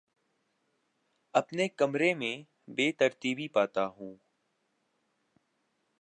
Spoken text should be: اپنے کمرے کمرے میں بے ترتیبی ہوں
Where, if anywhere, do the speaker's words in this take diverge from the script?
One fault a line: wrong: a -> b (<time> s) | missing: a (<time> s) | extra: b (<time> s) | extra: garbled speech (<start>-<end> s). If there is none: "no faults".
missing: کمرے (2.1 s)
extra: پاتا (3.5 s)